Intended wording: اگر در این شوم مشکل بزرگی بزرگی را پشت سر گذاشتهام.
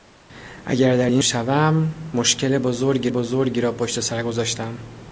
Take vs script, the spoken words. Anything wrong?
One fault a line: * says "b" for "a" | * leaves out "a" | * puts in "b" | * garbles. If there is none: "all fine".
all fine